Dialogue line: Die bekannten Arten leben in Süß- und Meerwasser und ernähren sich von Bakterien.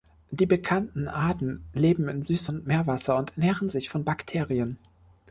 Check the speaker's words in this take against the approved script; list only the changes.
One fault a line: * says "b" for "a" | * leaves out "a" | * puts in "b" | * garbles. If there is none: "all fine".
all fine